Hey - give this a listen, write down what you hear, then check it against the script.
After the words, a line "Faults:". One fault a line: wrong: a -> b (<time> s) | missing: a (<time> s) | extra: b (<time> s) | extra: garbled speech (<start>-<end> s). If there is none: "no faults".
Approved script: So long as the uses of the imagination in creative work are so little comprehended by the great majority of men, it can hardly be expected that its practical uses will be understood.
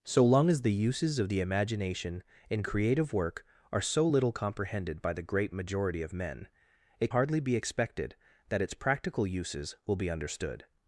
So long as the uses of the imagination in creative work are so little comprehended by the great majority of men, it hardly be expected that its practical uses will be understood.
Faults:
missing: can (7.1 s)